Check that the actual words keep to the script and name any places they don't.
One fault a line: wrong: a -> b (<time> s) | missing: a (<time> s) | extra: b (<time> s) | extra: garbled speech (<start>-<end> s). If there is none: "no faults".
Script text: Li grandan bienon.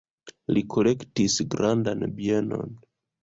extra: kolektis (0.8 s)